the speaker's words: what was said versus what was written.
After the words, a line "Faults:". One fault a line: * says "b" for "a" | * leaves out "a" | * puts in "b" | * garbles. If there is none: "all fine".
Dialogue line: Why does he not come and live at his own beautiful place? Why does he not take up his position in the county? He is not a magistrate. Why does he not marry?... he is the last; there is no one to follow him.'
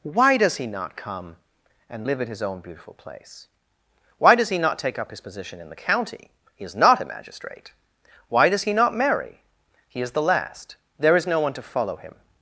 Why does he not come and live at his own beautiful place? Why does he not take up his position in the county? He is not a magistrate. Why does he not marry?... he is the last; there is no one to follow him.'
Faults:
all fine